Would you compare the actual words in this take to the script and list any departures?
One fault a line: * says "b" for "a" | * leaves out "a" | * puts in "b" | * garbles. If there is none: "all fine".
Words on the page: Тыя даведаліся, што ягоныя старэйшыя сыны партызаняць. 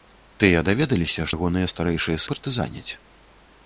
* leaves out "што"
* leaves out "сыны"